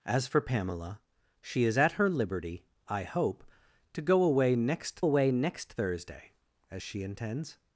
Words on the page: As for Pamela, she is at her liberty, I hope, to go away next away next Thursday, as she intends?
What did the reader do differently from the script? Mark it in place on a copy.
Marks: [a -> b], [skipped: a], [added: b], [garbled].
As for Pamela, she is at her liberty, I hope, to go away next away next Thursday, as she intends?